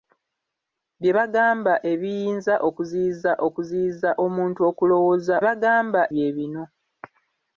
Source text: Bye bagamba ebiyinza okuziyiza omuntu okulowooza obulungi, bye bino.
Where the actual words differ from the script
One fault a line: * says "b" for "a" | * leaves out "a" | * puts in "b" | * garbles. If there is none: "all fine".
* puts in "okuziyiza"
* says "bagamba" for "obulungi"